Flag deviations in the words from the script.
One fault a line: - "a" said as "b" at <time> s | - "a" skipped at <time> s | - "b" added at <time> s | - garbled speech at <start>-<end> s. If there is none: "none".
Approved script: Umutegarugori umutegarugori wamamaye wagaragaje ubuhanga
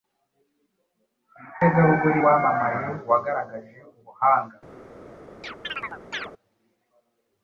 - "umutegarugori" skipped at 2.2 s